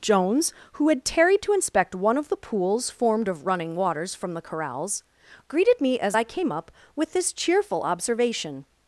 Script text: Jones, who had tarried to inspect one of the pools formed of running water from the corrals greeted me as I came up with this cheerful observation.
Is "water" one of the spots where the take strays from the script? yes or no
yes